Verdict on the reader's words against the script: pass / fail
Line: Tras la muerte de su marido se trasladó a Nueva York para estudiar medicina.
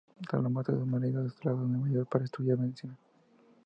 pass